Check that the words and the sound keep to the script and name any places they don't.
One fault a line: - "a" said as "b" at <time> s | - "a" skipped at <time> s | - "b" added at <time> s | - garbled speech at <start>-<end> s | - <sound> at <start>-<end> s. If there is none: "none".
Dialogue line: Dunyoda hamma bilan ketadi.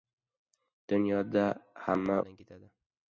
none